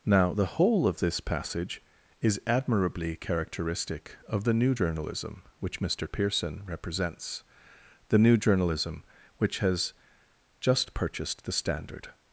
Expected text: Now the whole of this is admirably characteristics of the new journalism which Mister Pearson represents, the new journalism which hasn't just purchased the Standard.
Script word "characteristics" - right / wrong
wrong